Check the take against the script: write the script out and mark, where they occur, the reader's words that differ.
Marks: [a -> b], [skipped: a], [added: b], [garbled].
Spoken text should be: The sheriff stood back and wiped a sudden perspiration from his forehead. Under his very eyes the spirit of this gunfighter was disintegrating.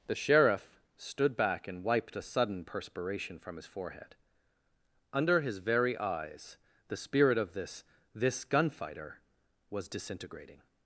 The sheriff stood back and wiped a sudden perspiration from his forehead. Under his very eyes the spirit of this [added: this] gunfighter was disintegrating.